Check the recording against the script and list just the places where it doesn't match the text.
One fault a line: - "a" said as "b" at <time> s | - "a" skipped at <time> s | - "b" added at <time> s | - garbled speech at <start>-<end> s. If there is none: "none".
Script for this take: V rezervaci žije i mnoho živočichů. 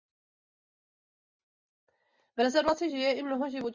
none